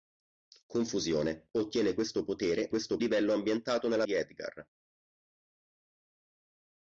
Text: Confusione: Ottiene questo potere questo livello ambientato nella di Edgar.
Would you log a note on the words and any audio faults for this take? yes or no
no